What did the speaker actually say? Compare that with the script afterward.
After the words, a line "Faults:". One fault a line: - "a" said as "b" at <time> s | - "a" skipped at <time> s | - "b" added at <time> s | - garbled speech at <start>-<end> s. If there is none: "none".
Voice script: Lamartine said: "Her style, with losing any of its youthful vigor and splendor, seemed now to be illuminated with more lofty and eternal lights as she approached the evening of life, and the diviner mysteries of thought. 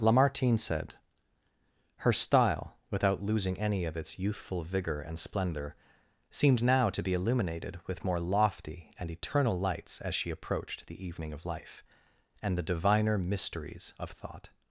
Lamartine said: "Her style, without losing any of its youthful vigor and splendor, seemed now to be illuminated with more lofty and eternal lights as she approached the evening of life, and the diviner mysteries of thought.
Faults:
- "with" said as "without" at 2.9 s